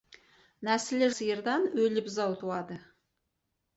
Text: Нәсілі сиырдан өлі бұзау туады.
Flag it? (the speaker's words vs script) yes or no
no